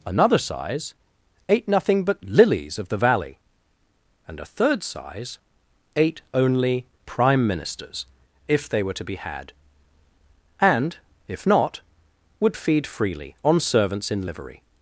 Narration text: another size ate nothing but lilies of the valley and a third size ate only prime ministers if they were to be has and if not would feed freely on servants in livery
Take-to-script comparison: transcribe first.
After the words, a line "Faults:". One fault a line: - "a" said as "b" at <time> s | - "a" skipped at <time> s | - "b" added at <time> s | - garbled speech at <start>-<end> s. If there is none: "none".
another size ate nothing but lilies of the valley and a third size ate only prime ministers if they were to be had and if not would feed freely on servants in livery
Faults:
- "has" said as "had" at 9.2 s